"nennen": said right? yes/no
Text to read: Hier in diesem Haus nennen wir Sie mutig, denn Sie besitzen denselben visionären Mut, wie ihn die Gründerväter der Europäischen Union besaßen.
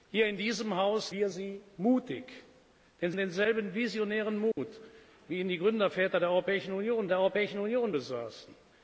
no